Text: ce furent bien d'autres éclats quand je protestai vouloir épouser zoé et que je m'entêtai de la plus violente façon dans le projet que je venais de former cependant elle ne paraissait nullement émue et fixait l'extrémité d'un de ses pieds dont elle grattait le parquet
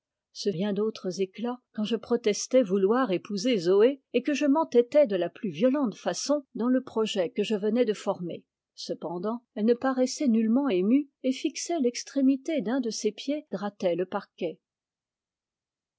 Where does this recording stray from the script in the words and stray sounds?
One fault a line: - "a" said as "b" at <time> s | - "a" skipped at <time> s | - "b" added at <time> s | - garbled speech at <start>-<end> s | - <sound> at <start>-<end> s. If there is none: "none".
- "furent" skipped at 0.5 s
- "dont elle" skipped at 13.5 s